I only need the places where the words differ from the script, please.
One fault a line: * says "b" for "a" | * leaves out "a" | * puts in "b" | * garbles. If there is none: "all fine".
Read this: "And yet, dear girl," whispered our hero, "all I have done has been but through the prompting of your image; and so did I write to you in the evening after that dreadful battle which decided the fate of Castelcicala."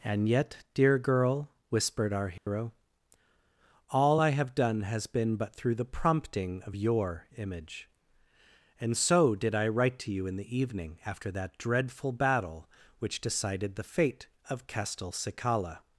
all fine